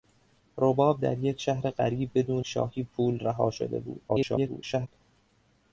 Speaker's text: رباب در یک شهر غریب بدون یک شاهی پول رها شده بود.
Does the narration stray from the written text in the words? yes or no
yes